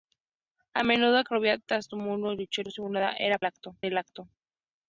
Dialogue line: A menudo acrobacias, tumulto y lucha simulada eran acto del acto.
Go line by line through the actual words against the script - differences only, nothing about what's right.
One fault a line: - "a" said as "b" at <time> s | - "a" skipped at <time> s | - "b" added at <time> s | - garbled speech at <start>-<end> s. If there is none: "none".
none